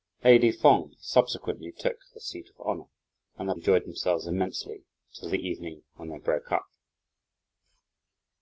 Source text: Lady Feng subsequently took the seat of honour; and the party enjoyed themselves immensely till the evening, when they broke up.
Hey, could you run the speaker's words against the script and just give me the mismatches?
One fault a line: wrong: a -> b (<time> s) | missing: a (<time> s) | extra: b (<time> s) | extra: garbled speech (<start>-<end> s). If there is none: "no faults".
missing: party (3.5 s)